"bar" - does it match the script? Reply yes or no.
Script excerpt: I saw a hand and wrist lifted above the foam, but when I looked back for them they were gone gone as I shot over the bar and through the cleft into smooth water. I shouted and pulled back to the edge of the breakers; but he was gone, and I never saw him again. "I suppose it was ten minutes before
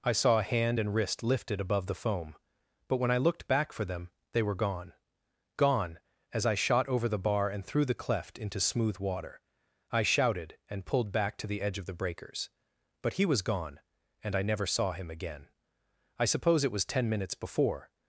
yes